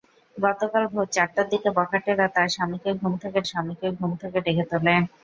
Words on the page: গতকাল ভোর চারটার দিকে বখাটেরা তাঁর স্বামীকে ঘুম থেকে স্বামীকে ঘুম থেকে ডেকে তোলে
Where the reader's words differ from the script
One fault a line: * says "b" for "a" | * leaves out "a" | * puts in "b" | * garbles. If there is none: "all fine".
all fine